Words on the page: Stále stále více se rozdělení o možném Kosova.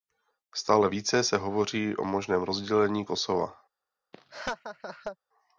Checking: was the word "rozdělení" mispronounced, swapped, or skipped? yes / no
yes